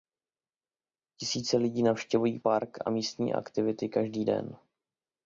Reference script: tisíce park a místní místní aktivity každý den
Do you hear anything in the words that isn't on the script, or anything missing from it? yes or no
yes